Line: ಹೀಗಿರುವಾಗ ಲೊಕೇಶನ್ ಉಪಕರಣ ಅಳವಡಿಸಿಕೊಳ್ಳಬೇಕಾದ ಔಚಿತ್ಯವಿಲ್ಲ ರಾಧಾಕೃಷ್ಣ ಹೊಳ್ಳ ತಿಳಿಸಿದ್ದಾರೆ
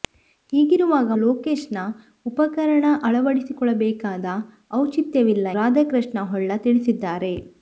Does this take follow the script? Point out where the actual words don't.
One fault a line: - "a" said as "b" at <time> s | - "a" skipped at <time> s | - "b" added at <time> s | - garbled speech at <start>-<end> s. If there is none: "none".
none